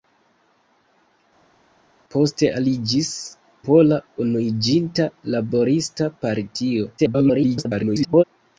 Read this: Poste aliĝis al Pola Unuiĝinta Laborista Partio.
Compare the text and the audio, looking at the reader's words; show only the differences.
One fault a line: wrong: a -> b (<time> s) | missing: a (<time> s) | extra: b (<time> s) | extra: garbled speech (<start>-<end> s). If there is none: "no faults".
missing: al (3.1 s)
extra: garbled speech (7.0-8.2 s)